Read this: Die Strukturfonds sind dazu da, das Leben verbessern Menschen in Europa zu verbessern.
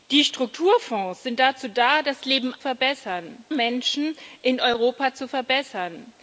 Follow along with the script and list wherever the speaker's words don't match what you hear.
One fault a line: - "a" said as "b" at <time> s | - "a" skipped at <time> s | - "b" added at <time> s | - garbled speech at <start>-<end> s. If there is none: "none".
none